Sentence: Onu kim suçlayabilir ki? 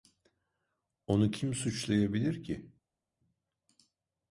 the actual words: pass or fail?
pass